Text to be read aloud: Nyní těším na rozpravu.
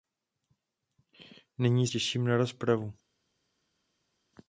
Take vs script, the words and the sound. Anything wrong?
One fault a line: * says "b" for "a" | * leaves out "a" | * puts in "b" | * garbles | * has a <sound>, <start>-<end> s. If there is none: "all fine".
all fine